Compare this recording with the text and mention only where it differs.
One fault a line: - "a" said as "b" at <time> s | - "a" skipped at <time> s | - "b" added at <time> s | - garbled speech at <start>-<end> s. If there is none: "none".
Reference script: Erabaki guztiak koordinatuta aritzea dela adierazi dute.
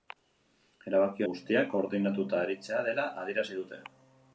none